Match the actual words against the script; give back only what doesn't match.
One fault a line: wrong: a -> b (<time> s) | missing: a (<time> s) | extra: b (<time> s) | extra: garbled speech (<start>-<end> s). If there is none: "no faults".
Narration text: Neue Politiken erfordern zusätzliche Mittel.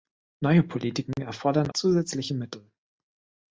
no faults